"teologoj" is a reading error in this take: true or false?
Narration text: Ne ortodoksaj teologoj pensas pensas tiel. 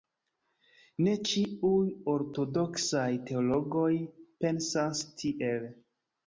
false